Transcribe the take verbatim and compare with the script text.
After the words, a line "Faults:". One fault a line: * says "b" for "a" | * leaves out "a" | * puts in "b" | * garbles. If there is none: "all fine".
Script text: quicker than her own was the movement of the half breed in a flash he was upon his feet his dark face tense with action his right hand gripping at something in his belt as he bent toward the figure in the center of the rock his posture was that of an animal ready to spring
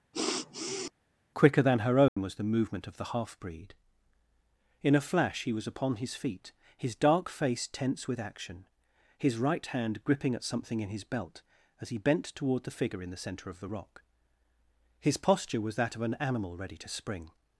quicker than her own was the movement of the half breed in a flash he was upon his feet his dark face tense with action his right hand gripping at something in his belt as he bent toward the figure in the center of the rock his posture was that of an animal ready to spring
Faults:
all fine